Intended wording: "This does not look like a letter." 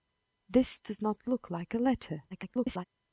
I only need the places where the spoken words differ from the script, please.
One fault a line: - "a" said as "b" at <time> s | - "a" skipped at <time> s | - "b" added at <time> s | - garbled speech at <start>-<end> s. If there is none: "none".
- garbled speech at 2.3-2.8 s